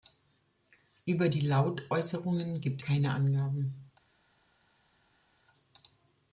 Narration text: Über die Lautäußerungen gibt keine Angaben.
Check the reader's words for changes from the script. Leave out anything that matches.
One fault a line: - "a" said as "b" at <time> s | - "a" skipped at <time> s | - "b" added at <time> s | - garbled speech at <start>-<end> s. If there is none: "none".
none